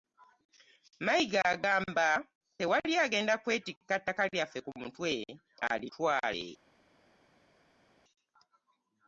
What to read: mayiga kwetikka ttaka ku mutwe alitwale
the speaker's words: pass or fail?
fail